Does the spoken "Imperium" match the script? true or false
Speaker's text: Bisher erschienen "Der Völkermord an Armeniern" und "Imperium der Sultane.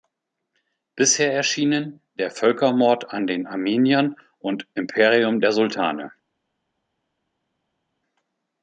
true